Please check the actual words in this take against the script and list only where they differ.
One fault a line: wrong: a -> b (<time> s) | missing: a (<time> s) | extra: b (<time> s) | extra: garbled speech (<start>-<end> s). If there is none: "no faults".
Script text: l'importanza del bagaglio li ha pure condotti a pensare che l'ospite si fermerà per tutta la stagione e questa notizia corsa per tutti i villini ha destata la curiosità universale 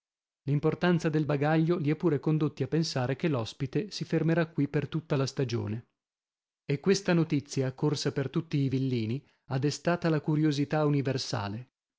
extra: qui (4.5 s)